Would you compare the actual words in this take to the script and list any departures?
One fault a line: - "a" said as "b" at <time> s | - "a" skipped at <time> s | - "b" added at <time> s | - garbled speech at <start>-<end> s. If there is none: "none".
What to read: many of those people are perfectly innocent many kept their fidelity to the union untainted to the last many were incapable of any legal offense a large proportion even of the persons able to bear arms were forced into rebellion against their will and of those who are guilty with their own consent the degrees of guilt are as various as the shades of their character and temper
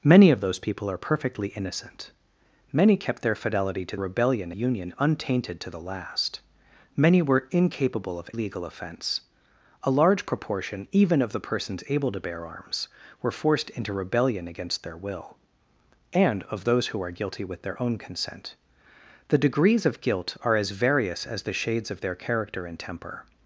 - "the" said as "rebellion" at 4.0 s
- "any" skipped at 8.3 s